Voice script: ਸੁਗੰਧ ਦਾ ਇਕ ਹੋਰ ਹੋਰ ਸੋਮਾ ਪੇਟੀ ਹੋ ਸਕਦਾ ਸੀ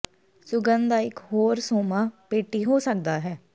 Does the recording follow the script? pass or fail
fail